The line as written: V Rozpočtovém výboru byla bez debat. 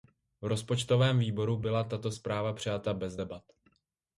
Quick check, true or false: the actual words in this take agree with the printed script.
false